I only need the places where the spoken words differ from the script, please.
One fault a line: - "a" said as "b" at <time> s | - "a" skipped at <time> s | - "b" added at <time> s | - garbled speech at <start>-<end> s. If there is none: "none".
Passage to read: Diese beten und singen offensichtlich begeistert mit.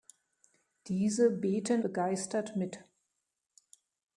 - "und singen offensichtlich" skipped at 1.8 s